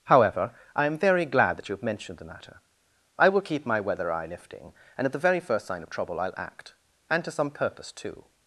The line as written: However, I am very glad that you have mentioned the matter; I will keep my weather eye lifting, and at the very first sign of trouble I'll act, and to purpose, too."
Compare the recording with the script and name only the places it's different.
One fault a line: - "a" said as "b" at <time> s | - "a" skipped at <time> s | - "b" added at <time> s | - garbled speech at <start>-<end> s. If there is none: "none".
- "some" added at 7.3 s